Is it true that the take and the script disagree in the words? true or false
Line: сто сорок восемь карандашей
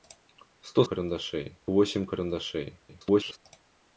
true